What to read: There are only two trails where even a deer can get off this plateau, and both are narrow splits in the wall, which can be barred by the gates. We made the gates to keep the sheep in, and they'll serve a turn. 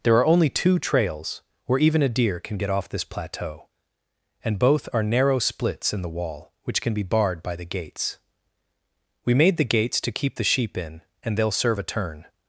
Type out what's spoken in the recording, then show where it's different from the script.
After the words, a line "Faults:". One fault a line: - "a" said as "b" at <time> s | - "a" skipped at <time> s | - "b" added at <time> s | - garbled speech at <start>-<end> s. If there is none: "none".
There are only two trails where even a deer can get off this plateau, and both are narrow splits in the wall, which can be barred by the gates. We made the gates to keep the sheep in, and they'll serve a turn.
Faults:
none